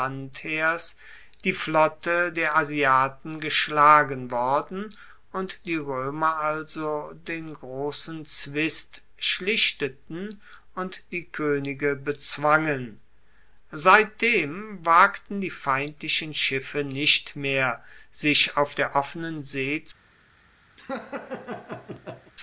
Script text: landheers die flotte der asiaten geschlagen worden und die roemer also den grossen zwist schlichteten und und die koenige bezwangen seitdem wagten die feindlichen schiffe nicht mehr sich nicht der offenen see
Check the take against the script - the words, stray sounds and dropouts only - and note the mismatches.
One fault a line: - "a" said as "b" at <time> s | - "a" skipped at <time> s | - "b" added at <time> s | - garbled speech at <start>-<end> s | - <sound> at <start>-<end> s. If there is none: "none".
- "und" skipped at 11.0 s
- "nicht" said as "auf" at 18.6 s
- laugh at 20.8-22.3 s